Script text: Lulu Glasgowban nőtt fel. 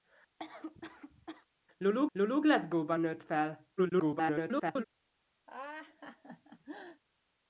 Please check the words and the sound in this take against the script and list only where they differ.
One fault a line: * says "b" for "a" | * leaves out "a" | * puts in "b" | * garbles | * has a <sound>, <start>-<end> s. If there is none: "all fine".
* has a cough, 0.4-1.5 s
* puts in "lulu"
* garbles
* has a laugh, 5.5-7.0 s